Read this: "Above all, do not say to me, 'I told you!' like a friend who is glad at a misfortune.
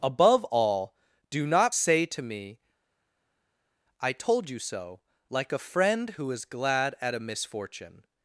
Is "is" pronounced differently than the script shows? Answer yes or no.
no